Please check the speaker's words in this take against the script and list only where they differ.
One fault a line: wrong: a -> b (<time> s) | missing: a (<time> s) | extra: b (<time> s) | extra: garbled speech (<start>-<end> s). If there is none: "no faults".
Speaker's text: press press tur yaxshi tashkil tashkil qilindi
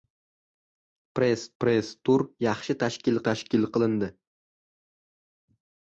no faults